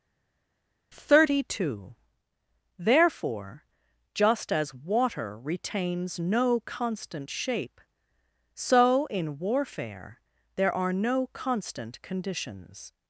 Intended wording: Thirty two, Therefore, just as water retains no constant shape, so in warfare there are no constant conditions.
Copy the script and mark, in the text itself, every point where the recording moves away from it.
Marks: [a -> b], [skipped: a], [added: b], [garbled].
Thirty two, Therefore, just as water retains no constant shape, so in warfare there are no constant conditions.